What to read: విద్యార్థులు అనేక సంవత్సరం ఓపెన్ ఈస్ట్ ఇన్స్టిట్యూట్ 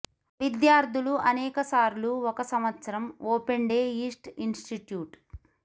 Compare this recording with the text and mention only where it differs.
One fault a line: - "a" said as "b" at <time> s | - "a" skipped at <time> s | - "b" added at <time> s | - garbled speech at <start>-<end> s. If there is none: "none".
- "సార్లు ఒక" added at 1.7 s
- "డే" added at 3.7 s